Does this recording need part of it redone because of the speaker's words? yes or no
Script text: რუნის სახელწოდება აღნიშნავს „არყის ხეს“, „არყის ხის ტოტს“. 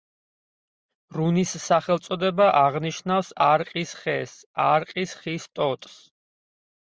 no